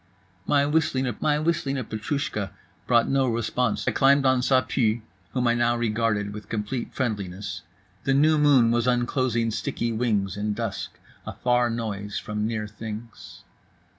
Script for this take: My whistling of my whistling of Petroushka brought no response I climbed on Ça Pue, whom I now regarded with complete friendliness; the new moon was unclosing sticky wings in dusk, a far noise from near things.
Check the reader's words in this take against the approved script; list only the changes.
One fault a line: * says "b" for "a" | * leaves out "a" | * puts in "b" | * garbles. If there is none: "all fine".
all fine